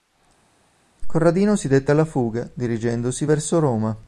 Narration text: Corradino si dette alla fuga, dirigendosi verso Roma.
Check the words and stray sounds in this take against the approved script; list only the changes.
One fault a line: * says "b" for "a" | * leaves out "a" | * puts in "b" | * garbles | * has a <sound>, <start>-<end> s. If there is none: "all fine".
all fine